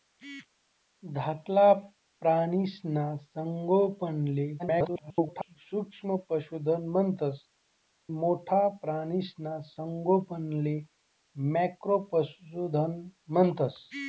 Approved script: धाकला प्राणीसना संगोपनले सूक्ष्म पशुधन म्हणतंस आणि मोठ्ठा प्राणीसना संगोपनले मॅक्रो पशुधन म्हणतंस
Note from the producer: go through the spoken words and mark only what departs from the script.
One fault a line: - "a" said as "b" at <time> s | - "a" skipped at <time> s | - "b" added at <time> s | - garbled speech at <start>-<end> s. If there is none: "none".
- garbled speech at 4.6-5.6 s
- "आणि" skipped at 7.4 s